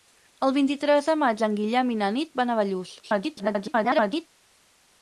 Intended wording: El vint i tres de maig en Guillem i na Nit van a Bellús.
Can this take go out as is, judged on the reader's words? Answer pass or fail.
fail